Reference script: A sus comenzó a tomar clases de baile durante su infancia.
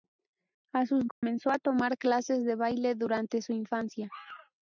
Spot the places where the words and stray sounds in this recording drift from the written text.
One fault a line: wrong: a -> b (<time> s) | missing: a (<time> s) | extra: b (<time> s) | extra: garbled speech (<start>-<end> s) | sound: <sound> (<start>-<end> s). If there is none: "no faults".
sound: dropout (1.1-1.2 s)